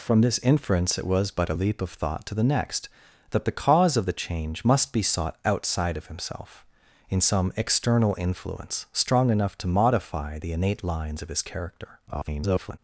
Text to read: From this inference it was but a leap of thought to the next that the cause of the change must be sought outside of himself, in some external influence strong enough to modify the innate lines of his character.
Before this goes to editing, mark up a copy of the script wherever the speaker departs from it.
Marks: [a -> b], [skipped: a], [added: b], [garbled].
From this inference it was but a leap of thought to the next that the cause of the change must be sought outside of himself, in some external influence strong enough to modify the innate lines of his character. [garbled]